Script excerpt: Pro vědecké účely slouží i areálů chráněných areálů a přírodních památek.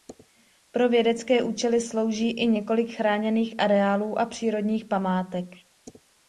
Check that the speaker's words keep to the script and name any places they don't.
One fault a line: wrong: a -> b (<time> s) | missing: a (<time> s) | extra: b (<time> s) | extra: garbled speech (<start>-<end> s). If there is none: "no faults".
wrong: areálů -> několik (2.5 s)